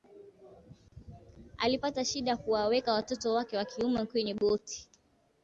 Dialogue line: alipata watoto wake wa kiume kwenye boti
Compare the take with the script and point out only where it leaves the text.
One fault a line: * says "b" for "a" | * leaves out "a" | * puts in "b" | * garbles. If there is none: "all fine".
* puts in "shida kuwaweka"